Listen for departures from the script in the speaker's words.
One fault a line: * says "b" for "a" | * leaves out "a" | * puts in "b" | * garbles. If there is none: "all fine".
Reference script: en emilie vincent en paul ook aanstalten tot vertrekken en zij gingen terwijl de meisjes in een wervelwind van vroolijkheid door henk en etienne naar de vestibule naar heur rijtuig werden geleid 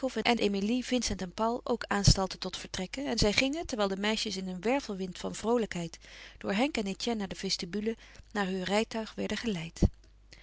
all fine